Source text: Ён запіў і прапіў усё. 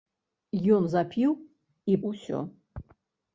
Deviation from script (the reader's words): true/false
true